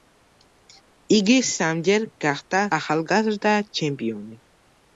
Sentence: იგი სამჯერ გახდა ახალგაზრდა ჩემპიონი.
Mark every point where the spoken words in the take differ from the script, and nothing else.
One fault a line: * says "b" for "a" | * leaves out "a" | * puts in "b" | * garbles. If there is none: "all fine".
all fine